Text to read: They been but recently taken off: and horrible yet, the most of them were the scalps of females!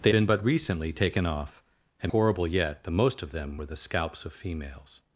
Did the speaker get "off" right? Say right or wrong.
right